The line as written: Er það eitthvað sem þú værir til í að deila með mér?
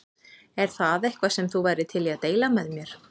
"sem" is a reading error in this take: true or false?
false